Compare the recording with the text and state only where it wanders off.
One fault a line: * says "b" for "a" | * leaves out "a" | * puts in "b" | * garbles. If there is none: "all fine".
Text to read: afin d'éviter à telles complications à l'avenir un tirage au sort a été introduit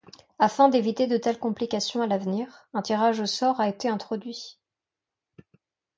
* says "de" for "à"